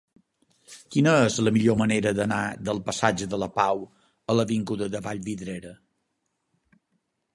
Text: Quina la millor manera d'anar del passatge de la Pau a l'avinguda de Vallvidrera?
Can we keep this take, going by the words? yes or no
no